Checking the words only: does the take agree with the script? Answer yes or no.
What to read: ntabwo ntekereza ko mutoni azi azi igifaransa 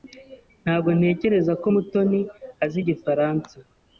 no